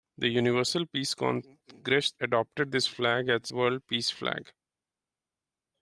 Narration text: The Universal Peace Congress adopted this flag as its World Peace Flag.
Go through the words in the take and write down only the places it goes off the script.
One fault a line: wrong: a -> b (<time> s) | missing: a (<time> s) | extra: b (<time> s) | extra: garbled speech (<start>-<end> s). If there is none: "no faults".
missing: its (3.5 s)